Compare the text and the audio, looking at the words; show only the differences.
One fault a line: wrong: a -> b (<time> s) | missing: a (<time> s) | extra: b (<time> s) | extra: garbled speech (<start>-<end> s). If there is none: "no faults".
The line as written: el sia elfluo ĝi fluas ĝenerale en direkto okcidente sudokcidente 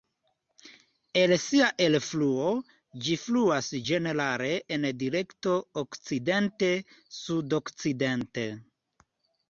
no faults